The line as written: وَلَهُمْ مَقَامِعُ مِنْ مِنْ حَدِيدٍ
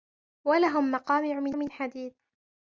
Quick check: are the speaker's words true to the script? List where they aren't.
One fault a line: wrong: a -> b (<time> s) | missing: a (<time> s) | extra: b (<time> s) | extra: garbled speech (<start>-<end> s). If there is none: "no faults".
no faults